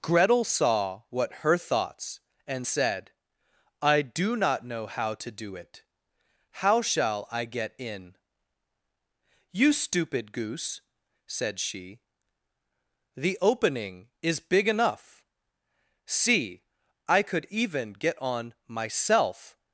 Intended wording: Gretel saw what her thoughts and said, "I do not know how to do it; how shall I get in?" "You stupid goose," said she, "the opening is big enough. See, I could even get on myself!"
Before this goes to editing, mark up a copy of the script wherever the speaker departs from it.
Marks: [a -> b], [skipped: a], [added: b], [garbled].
Gretel saw what her thoughts and said, "I do not know how to do it; how shall I get in?" "You stupid goose," said she, "the opening is big enough. See, I could even get on myself!"